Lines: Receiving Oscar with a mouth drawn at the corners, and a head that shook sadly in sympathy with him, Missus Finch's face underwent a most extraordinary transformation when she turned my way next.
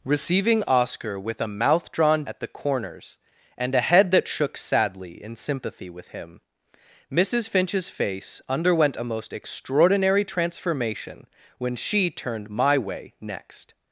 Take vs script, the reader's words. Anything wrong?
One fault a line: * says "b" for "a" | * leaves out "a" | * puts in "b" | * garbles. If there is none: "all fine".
all fine